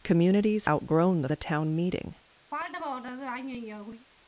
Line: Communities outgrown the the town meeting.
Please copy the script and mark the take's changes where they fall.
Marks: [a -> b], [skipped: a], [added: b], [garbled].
Communities outgrown the the town meeting.